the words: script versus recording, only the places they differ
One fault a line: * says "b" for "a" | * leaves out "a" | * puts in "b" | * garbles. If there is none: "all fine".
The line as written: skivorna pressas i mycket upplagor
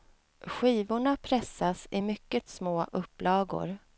* puts in "små"